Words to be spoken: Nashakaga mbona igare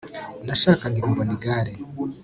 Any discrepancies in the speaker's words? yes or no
no